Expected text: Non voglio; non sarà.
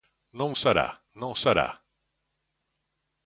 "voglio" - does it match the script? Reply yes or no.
no